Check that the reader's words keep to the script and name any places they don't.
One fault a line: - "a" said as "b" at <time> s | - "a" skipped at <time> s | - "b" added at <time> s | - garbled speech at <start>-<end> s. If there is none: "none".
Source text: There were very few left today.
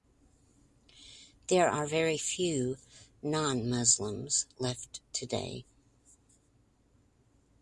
- "were" said as "are" at 1.7 s
- "non Muslims" added at 3.2 s